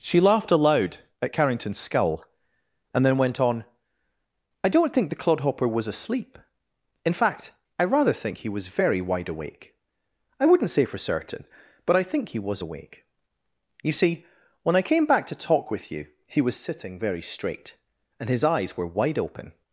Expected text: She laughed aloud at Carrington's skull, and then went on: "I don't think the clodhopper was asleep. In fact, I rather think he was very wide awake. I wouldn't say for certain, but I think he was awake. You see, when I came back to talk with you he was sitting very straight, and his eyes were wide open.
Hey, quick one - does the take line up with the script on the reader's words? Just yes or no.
yes